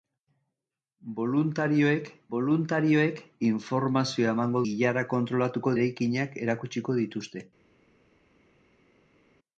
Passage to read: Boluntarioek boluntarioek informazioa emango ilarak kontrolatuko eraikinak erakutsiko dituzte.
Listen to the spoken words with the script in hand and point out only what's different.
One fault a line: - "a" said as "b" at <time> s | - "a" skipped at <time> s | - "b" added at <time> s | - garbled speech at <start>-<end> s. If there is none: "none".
none